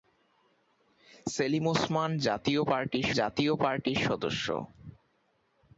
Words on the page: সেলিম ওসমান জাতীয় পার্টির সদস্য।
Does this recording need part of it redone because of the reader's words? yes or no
yes